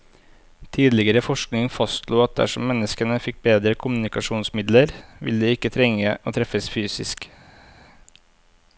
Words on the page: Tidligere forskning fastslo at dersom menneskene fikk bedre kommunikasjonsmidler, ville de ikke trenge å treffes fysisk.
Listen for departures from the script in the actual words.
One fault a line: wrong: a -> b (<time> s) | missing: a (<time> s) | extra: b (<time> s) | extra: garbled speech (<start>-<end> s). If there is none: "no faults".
no faults